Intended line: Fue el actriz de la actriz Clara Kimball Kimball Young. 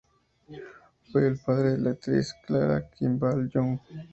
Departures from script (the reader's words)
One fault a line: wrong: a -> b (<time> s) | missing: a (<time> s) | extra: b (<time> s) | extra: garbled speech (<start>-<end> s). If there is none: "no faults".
wrong: actriz -> padre (1.4 s)
missing: Kimball (3.5 s)